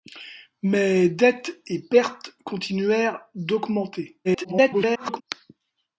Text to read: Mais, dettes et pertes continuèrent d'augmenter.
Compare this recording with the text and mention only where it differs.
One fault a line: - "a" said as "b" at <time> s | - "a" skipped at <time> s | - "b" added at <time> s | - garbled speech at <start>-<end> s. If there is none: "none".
- garbled speech at 4.2-5.2 s